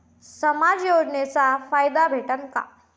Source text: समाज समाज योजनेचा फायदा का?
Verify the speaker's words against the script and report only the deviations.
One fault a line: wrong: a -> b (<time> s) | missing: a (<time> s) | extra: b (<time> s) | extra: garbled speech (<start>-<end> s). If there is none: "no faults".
missing: समाज (0.8 s)
extra: भेटन (2.1 s)